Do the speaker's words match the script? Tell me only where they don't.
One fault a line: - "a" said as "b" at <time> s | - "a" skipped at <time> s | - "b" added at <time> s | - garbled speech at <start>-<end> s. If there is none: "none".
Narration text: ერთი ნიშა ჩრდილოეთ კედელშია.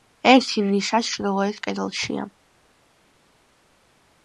none